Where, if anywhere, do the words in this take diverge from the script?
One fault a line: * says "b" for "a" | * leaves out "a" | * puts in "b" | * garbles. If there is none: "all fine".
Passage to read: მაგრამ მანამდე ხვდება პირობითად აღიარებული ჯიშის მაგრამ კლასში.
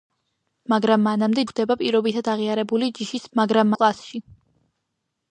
all fine